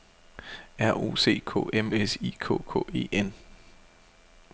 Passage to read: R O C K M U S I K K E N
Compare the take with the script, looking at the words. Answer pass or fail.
fail